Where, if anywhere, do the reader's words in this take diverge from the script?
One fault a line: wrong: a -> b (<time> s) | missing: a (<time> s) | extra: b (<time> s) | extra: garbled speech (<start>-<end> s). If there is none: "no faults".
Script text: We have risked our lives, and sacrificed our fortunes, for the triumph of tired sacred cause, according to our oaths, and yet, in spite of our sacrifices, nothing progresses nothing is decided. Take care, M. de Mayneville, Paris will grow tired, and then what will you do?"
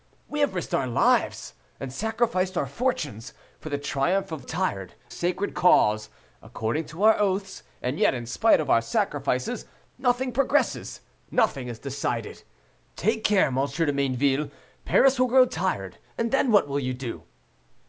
no faults